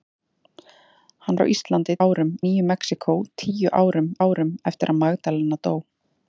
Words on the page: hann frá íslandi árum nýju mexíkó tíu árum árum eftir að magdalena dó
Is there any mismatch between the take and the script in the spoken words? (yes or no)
no